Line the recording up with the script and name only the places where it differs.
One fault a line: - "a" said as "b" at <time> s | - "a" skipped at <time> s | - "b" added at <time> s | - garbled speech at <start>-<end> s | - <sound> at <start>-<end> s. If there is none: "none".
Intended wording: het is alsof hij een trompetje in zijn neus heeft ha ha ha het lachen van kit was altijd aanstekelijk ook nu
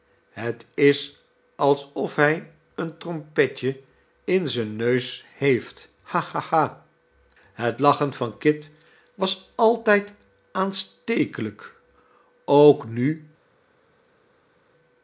none